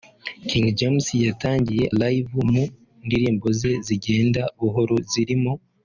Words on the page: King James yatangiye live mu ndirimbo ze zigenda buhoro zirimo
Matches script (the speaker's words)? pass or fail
pass